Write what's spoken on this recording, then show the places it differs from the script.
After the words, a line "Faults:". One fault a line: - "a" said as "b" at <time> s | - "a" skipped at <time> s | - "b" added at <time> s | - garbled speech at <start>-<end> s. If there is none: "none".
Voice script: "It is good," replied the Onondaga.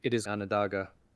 "It is Onondaga.
Faults:
- "good replied the" skipped at 0.2 s